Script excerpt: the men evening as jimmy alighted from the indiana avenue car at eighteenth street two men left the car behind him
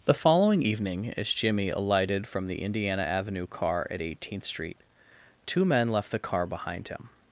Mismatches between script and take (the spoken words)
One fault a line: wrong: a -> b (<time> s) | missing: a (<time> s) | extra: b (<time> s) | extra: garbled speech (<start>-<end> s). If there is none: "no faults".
wrong: men -> following (0.1 s)